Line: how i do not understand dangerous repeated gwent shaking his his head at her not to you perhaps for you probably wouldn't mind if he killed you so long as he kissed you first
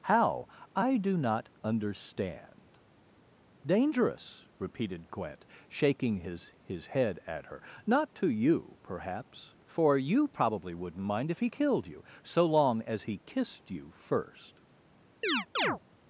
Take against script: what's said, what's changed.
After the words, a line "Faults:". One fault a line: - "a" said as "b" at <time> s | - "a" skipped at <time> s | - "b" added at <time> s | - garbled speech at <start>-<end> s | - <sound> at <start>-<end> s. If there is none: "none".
how i do not understand dangerous repeated gwent shaking his his head at her not to you perhaps for you probably wouldn't mind if he killed you so long as he kissed you first
Faults:
- chirp at 15.2-15.8 s